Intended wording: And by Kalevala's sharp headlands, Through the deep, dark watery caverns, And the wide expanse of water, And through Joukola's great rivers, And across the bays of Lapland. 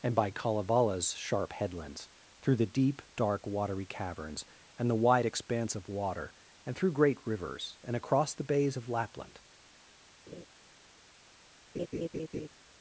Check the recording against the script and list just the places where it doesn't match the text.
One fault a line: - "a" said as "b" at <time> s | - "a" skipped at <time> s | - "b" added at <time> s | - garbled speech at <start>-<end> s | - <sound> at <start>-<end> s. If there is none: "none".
- "Joukola's" skipped at 6.9 s
- laugh at 10.3-10.5 s
- laugh at 11.7-12.5 s